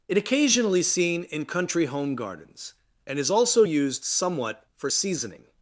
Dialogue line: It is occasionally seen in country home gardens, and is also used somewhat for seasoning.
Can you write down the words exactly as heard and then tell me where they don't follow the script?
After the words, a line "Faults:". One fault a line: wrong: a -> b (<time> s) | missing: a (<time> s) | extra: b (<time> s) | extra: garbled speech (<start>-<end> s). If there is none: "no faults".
It occasionally seen in country home gardens, and is also used somewhat for seasoning.
Faults:
missing: is (0.2 s)